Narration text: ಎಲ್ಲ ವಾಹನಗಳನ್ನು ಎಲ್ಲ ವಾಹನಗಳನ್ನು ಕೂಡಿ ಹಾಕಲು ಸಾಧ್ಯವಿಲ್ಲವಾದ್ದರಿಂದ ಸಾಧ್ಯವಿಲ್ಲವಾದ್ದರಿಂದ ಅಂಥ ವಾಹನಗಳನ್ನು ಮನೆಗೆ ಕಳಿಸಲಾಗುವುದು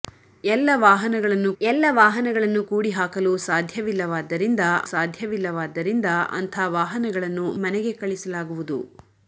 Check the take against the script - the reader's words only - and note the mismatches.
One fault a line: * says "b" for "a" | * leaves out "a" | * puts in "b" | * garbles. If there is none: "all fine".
all fine